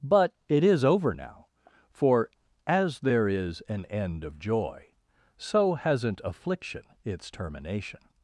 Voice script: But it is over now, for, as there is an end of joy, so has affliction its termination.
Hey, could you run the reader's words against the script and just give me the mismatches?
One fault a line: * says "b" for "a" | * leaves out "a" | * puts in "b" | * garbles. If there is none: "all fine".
* says "hasn't" for "has"